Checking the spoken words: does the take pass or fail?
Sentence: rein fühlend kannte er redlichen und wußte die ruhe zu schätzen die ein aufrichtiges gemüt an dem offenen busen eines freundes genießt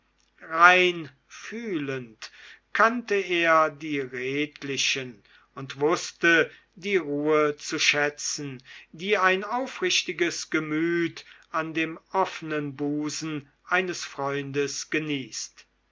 fail